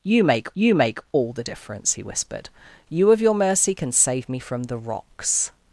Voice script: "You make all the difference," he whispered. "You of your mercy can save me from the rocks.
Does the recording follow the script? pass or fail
fail